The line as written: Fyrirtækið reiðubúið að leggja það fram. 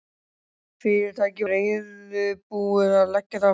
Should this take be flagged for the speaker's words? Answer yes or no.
no